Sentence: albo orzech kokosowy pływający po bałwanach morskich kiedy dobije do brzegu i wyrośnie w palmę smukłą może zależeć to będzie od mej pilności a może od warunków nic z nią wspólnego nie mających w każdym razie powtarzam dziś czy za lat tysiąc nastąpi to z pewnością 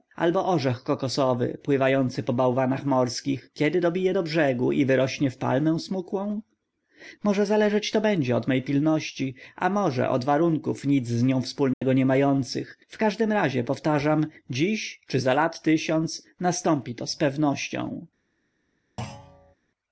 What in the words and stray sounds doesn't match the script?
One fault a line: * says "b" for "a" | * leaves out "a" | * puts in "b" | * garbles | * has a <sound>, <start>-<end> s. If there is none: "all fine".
* has a dropout, 11.7-11.8 s
* has a thud, 19.0-19.6 s